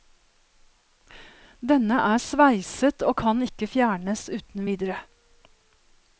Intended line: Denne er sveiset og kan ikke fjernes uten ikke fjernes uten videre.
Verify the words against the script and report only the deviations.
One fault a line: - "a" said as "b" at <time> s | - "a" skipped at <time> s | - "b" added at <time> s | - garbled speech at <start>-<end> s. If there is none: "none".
- "ikke fjernes uten" skipped at 4.7 s